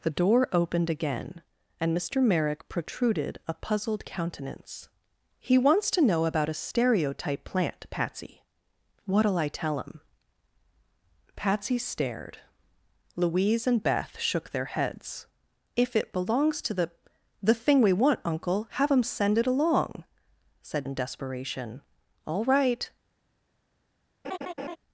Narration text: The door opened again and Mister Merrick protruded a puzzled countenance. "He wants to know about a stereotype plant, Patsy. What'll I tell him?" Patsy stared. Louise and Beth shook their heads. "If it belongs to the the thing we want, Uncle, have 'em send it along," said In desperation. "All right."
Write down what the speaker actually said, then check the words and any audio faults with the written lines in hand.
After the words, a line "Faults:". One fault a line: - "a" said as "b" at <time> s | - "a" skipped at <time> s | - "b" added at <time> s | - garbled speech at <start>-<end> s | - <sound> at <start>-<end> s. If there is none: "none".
The door opened again and Mister Merrick protruded a puzzled countenance. "He wants to know about a stereotype plant, Patsy. What'll I tell him?" Patsy stared. Louise and Beth shook their heads. "If it belongs to the the thing we want, Uncle, have 'em send it along," said In desperation. "All right."
Faults:
- laugh at 24.2-24.8 s